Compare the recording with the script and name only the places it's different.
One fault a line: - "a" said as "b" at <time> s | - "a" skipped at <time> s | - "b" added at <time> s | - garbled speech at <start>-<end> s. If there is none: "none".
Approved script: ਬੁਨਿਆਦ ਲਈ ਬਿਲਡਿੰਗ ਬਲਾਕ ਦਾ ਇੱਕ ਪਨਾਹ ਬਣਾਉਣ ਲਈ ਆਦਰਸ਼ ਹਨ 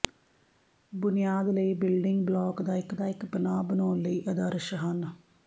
- "ਦਾ ਇੱਕ" added at 3.0 s